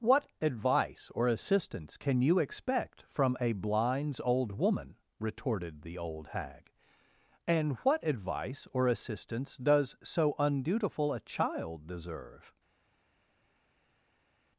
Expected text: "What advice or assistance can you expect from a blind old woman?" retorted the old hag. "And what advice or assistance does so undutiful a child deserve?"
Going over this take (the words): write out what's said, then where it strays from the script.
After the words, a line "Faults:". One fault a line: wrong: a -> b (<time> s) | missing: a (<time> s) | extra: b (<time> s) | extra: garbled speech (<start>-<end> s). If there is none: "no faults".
"What advice or assistance can you expect from a blinds old woman?" retorted the old hag. "And what advice or assistance does so undutiful a child deserve?"
Faults:
wrong: blind -> blinds (3.5 s)